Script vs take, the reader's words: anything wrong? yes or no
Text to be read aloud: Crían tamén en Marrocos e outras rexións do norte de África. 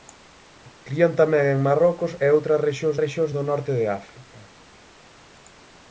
yes